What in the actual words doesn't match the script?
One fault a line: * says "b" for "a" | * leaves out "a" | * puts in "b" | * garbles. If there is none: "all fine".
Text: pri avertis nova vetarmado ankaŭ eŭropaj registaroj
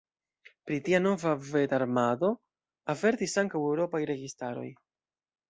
* says "tia" for "avertis"
* puts in "avertis"